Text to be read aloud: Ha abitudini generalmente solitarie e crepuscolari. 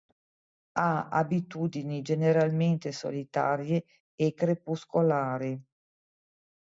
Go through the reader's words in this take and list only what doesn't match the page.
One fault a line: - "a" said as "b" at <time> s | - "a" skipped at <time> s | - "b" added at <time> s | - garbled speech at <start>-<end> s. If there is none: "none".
none